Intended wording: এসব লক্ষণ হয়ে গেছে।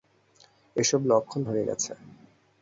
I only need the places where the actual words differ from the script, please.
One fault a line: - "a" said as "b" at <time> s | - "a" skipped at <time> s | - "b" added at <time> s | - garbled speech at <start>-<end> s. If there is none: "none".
none